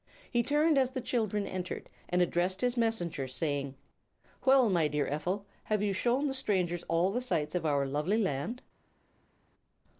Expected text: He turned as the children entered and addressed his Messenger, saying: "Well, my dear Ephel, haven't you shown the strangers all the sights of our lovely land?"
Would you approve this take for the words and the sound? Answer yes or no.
no